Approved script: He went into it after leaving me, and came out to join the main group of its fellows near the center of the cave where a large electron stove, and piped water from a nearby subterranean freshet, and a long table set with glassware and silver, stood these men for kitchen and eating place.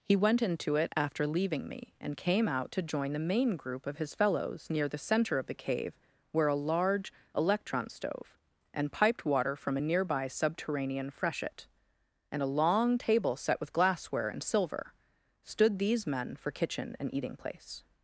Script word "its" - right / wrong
wrong